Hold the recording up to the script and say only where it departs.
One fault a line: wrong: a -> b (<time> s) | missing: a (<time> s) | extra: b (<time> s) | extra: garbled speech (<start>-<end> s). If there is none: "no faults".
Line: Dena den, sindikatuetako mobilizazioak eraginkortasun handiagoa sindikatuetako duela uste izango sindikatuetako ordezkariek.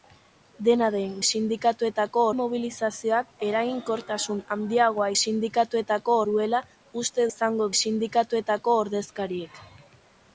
no faults